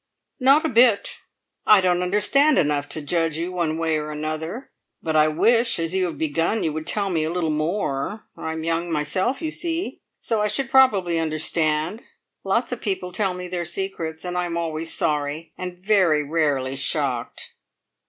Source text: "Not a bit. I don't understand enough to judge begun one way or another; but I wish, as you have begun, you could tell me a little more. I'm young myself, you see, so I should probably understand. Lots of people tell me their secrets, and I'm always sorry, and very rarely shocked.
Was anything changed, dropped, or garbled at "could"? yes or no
yes